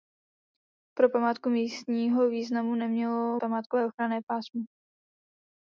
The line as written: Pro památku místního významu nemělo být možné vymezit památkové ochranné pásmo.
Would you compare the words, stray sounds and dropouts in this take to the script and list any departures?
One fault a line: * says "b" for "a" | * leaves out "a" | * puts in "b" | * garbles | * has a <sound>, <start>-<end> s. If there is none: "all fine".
* leaves out "být možné vymezit"